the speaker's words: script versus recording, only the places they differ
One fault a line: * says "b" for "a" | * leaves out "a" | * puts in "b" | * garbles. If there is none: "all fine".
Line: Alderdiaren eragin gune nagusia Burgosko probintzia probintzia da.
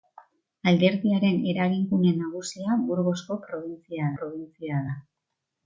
all fine